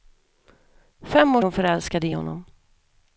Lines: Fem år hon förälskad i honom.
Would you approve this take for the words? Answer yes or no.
yes